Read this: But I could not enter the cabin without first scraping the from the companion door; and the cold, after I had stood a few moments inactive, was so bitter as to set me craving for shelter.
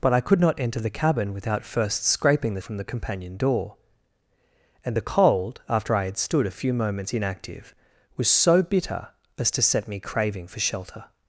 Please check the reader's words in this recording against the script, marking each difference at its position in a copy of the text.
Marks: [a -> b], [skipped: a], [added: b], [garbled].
But I could not enter the cabin without first scraping the from the companion door; and the cold, after I had stood a few moments inactive, was so bitter as to set me craving for shelter.